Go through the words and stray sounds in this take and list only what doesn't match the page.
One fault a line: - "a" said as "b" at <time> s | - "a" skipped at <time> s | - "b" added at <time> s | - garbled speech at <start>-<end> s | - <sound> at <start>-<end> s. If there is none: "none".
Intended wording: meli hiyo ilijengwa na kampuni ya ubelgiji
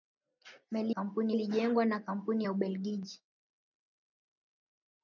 - "hiyo" said as "kampuni" at 0.9 s